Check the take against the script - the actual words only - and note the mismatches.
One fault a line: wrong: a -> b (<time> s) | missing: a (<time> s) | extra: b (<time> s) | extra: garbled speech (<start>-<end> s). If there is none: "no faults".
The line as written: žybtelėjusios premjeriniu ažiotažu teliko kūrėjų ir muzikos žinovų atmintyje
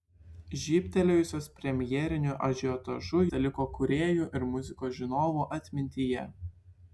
no faults